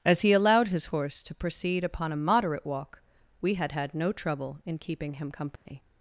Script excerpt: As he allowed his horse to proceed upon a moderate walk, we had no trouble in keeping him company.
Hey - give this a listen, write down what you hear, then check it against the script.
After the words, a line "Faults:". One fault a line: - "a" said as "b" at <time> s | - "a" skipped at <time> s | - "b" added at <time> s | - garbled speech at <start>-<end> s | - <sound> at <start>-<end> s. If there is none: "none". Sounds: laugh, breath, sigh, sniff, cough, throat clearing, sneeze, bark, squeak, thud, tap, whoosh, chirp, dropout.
As he allowed his horse to proceed upon a moderate walk, we had had no trouble in keeping him company.
Faults:
- "had" added at 3.7 s
- dropout at 5.6-5.7 s